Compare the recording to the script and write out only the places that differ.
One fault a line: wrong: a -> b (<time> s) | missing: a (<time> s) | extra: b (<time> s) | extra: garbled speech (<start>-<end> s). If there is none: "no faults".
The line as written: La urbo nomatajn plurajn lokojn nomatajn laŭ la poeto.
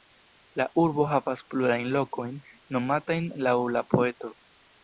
wrong: nomatajn -> havas (1.1 s)